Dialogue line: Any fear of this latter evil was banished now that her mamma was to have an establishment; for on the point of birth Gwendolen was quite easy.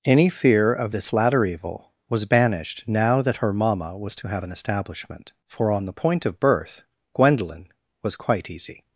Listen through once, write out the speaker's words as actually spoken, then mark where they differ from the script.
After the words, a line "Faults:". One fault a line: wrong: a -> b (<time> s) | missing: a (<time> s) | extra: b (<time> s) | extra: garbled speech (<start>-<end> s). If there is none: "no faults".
Any fear of this latter evil was banished now that her mamma was to have an establishment; for on the point of birth Gwendolen was quite easy.
Faults:
no faults